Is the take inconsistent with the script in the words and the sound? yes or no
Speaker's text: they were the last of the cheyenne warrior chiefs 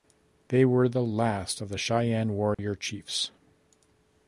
yes